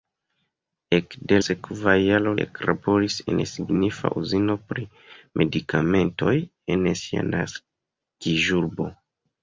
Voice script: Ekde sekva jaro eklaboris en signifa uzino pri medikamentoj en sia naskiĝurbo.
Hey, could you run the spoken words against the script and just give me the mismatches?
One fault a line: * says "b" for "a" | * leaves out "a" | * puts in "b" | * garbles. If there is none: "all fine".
all fine